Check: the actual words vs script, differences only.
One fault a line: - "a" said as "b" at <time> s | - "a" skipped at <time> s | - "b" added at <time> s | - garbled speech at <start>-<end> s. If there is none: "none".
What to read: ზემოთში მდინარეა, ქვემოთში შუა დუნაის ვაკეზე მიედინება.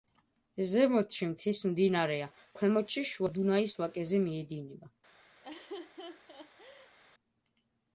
- "მთის" added at 1.3 s